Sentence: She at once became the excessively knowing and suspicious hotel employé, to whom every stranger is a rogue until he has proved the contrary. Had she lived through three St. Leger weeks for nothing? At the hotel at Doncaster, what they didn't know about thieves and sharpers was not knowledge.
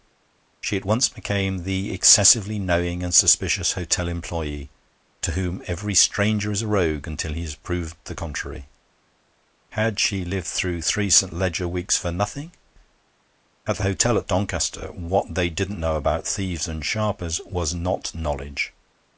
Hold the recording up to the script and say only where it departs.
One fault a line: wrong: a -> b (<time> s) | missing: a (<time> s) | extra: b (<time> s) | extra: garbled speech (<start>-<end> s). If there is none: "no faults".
no faults